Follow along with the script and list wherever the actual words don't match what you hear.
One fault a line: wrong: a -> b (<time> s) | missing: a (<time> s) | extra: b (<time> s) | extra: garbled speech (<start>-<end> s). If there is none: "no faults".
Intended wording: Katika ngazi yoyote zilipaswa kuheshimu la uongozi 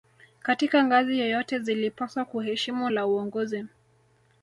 no faults